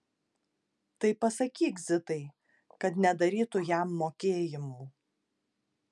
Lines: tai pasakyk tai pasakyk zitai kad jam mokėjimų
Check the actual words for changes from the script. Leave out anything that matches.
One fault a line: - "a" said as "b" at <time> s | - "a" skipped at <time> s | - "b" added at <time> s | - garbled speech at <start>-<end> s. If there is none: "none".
- "tai pasakyk" skipped at 1.8 s
- "nedarytų" added at 3.0 s